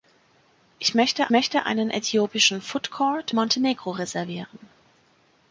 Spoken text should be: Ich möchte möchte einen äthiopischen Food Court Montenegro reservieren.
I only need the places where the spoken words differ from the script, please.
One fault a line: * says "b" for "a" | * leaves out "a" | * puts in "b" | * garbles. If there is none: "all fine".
all fine